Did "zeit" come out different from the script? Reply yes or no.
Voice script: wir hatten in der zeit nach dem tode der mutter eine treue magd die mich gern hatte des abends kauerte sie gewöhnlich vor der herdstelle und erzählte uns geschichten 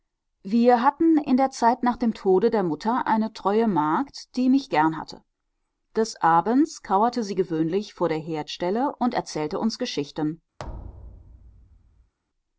no